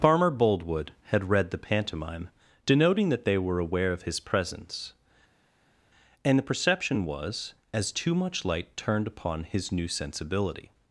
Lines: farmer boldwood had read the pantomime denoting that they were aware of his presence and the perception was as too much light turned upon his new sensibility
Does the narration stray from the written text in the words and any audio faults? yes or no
no